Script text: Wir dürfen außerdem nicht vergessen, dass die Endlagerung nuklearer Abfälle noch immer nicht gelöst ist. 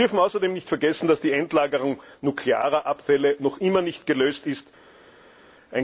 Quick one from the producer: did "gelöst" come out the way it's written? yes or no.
yes